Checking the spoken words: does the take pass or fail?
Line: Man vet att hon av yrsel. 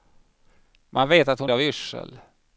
pass